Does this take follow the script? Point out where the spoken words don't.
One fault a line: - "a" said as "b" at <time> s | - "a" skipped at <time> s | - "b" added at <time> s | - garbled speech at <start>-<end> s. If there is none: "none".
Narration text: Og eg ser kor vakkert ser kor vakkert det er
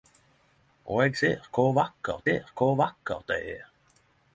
none